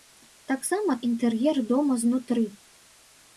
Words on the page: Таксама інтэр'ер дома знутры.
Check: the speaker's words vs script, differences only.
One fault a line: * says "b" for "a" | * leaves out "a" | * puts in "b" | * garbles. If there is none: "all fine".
all fine